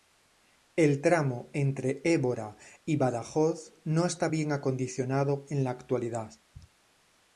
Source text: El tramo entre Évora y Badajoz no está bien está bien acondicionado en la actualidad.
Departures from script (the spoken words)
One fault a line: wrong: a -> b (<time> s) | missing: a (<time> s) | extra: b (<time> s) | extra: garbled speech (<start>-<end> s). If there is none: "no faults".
missing: está bien (4.5 s)